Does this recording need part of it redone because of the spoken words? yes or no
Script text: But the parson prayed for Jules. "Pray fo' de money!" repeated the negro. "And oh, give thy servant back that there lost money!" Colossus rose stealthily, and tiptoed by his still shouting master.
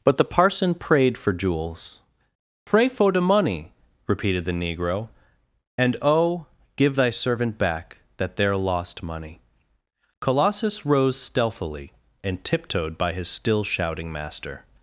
no